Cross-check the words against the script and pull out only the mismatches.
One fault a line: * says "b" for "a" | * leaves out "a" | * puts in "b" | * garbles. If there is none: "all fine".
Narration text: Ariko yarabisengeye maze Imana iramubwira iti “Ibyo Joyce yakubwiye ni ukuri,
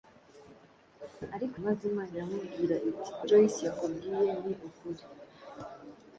* leaves out "yarabisengeye"
* leaves out "Ibyo"